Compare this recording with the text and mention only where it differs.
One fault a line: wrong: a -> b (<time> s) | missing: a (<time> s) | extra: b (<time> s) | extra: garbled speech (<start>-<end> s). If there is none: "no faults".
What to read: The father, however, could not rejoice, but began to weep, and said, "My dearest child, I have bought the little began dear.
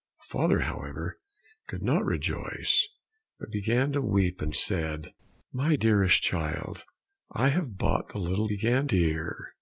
no faults